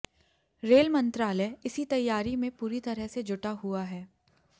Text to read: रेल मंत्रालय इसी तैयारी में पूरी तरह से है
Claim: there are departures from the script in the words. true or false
true